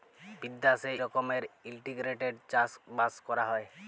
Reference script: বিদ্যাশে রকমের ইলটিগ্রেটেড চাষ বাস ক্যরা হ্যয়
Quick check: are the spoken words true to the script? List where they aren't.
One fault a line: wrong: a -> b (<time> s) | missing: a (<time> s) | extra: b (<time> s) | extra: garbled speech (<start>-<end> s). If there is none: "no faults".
no faults